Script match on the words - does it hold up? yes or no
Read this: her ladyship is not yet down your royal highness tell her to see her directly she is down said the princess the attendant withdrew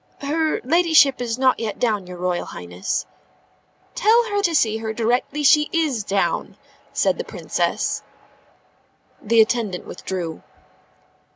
yes